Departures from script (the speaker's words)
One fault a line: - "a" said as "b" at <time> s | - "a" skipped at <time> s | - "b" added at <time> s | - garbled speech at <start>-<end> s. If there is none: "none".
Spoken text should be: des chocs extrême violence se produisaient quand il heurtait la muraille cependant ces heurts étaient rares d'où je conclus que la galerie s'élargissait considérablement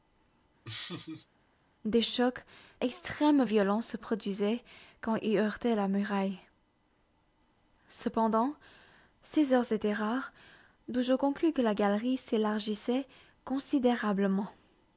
none